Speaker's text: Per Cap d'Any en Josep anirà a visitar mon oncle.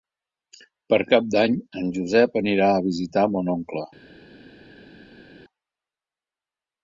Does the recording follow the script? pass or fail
pass